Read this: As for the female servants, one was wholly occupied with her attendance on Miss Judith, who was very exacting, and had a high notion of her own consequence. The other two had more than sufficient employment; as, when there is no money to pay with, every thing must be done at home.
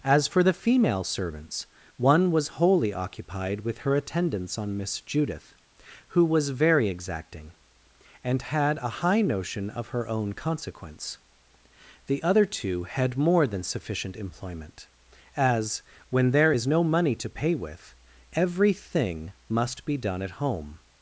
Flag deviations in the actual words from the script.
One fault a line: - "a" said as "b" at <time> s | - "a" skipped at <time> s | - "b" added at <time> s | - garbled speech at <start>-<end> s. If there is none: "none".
none